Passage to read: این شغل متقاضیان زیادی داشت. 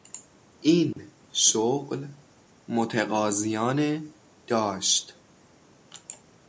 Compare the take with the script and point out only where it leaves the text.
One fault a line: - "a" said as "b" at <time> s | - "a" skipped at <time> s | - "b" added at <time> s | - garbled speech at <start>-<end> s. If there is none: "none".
- "زیادی" skipped at 4.1 s